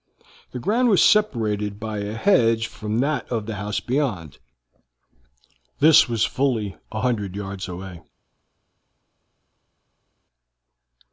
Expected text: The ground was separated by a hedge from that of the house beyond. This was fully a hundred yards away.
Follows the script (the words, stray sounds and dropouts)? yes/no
yes